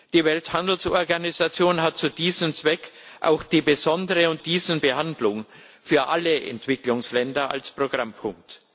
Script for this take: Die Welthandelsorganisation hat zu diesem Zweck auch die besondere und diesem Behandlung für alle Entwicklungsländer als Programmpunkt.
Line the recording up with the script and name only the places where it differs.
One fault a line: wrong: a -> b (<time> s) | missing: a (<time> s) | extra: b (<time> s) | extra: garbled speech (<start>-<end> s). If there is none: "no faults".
no faults